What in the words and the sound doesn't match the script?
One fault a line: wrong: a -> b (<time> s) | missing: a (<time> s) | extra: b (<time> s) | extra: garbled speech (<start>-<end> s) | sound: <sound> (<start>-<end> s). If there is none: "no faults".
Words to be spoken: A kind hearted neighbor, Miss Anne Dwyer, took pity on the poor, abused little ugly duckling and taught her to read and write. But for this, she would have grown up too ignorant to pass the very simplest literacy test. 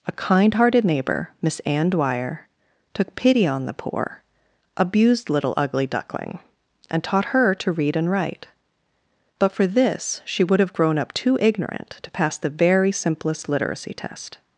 no faults